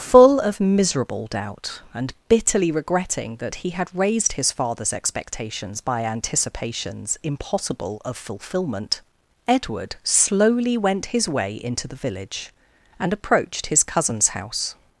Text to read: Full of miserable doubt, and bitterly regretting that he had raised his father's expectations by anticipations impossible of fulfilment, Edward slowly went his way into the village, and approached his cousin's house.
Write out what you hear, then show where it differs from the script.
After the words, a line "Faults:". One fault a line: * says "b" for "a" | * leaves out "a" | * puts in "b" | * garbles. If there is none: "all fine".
Full of miserable doubt, and bitterly regretting that he had raised his father's expectations by anticipations impossible of fulfilment, Edward slowly went his way into the village, and approached his cousin's house.
Faults:
all fine